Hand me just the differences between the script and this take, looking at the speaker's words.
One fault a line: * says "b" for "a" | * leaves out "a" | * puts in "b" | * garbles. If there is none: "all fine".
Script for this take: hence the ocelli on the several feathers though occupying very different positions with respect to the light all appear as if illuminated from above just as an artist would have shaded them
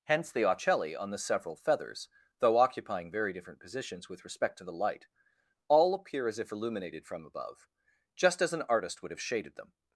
all fine